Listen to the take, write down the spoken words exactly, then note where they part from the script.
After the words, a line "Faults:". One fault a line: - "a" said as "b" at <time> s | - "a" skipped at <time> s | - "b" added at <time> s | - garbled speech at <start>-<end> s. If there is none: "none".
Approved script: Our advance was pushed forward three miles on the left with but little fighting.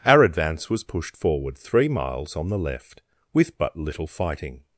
Our advance was pushed forward three miles on the left with but little fighting.
Faults:
none